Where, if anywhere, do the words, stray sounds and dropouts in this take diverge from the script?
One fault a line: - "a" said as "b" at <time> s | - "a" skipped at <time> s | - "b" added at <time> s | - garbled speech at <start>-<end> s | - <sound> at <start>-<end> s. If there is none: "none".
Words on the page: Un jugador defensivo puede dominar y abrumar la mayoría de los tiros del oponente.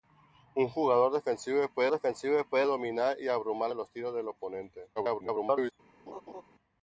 - "defensivo puede" added at 1.9 s
- "la mayoría" skipped at 3.7 s
- garbled speech at 5.0-5.7 s
- laugh at 6.1-6.4 s